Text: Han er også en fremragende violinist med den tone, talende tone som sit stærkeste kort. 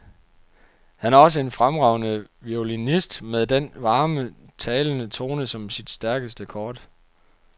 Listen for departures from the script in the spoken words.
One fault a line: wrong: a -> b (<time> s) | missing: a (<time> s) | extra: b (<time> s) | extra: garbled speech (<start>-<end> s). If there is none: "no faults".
wrong: tone -> varme (3.8 s)